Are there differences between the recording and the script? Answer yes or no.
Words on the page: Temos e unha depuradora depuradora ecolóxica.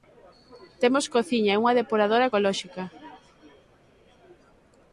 yes